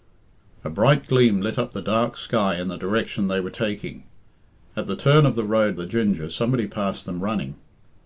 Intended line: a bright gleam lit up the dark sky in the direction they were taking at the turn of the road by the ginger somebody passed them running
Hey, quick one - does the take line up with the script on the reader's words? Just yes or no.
no